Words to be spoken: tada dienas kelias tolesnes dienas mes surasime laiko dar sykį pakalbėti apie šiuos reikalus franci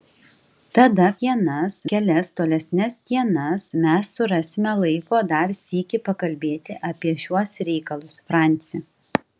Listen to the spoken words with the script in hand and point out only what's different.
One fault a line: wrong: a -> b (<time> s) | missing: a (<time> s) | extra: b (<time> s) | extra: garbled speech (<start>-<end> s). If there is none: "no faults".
no faults